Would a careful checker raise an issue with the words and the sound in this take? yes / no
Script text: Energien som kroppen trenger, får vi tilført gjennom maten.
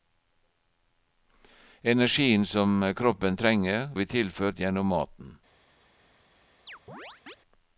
yes